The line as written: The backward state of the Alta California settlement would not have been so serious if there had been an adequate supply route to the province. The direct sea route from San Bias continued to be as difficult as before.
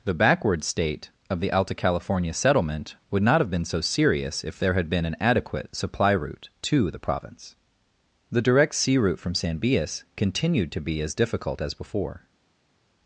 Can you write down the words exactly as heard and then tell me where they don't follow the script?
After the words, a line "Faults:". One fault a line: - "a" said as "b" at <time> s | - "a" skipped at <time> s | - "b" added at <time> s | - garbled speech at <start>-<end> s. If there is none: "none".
The backward state of the Alta California settlement would not have been so serious if there had been an adequate supply route to the province. The direct sea route from San Bias continued to be as difficult as before.
Faults:
none